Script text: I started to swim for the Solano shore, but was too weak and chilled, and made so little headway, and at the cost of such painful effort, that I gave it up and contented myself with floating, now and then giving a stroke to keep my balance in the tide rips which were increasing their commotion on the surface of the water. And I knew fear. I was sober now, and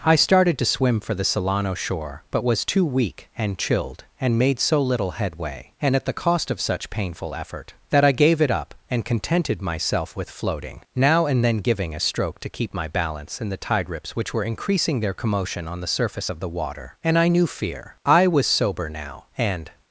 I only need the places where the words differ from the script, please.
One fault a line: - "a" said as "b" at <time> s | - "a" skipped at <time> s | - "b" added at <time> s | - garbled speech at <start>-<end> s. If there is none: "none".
none